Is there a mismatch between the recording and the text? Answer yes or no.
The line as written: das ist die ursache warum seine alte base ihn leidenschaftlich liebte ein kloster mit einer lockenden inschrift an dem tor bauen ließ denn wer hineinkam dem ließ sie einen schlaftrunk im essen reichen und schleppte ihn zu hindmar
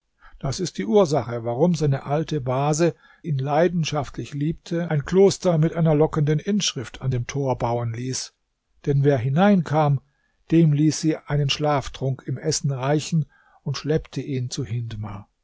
no